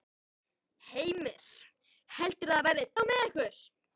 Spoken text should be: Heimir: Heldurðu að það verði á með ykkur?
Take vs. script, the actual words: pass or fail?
pass